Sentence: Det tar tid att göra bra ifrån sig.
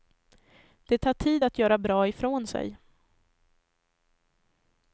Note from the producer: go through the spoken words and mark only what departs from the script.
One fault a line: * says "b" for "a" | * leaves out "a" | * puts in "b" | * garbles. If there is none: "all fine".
all fine